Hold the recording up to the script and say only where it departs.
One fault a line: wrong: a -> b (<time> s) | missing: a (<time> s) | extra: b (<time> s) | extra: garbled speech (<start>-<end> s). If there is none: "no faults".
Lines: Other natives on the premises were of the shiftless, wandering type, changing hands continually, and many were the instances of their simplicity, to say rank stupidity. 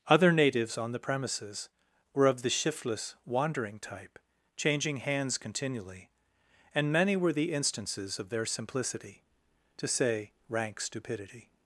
no faults